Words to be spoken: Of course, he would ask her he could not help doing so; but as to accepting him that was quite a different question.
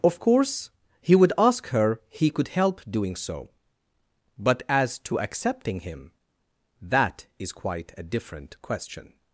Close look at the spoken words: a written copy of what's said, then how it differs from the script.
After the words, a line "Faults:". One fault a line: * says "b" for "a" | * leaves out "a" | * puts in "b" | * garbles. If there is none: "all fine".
Of course, he would ask her he could help doing so; but as to accepting him that is quite a different question.
Faults:
* leaves out "not"
* says "is" for "was"